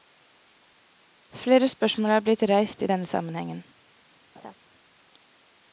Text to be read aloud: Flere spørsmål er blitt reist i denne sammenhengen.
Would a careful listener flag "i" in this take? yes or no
no